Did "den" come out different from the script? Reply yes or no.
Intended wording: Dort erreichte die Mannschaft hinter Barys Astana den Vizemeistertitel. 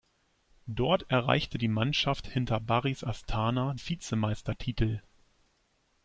yes